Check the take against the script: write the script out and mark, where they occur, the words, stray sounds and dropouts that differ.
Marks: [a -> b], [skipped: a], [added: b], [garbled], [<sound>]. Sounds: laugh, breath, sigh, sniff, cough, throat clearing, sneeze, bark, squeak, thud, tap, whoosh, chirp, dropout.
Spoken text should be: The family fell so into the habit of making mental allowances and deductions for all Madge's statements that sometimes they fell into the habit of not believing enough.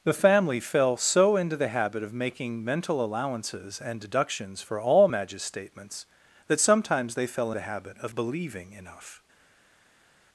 The family fell so into the habit of making mental allowances and deductions for all Madge's statements that sometimes they fell [skipped: into] the habit of [skipped: not] believing enough.